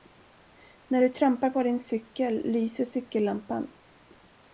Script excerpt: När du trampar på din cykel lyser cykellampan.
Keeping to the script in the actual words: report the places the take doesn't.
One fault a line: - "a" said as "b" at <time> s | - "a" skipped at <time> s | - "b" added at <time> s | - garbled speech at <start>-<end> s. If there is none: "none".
none